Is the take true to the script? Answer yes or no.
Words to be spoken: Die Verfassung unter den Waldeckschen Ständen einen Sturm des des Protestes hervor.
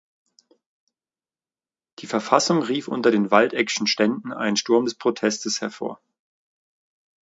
no